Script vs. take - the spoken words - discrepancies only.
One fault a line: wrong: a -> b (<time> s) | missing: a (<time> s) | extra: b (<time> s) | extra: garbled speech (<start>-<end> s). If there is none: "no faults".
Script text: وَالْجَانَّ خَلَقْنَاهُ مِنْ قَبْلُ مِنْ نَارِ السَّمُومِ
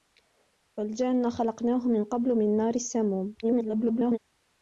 extra: garbled speech (3.4-4.2 s)